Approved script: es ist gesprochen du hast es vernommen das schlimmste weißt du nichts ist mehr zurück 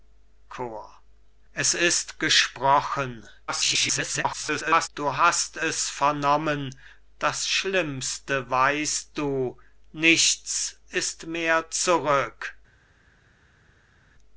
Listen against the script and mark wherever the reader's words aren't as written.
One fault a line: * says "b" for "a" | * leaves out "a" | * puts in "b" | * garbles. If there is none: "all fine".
* garbles